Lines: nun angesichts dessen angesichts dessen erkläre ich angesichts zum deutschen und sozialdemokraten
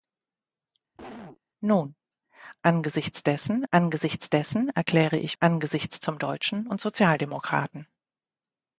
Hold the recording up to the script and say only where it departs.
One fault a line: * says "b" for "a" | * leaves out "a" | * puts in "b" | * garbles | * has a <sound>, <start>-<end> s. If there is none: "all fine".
* has a cough, 0.9-1.4 s